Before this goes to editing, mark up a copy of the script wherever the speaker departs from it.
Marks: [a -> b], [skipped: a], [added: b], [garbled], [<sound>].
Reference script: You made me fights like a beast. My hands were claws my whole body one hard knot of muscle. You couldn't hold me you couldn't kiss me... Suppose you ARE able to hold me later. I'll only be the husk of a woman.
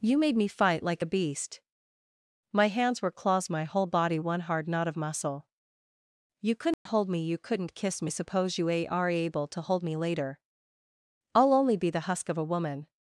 You made me [fights -> fight] like a beast. My hands were claws my whole body one hard knot of muscle. You couldn't [dropout] hold me you couldn't kiss me... Suppose you ARE able to hold me later. I'll only be the husk of a woman.